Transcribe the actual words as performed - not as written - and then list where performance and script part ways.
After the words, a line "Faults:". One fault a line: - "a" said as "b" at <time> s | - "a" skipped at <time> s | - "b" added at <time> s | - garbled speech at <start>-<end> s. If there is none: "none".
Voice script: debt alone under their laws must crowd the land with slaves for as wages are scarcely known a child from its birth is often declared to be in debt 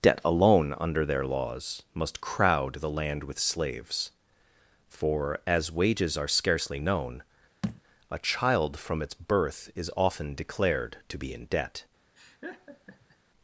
debt alone under their laws must crowd the land with slaves for as wages are scarcely known a child from its birth is often declared to be in debt
Faults:
none